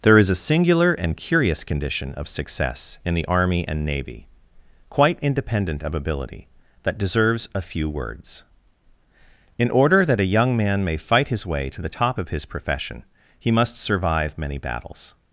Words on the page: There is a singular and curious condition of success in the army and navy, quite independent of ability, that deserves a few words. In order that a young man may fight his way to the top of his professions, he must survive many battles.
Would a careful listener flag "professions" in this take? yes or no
yes